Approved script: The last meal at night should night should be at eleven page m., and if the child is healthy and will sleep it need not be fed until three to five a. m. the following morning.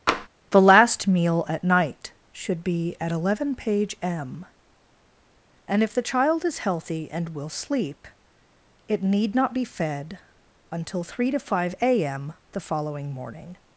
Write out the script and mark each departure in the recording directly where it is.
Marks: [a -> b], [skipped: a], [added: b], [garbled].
The last meal at night should [skipped: night should] be at eleven page m., and if the child is healthy and will sleep it need not be fed until three to five a. m. the following morning.